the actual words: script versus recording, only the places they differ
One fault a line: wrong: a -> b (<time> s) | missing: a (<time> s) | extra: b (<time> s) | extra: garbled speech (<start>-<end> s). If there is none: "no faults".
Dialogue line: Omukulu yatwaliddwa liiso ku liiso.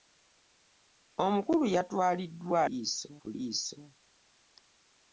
no faults